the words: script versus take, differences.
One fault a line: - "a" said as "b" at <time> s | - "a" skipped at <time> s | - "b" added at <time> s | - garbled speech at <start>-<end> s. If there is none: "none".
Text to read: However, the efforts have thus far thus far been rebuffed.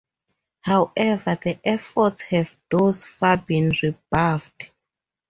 - "thus far" skipped at 3.4 s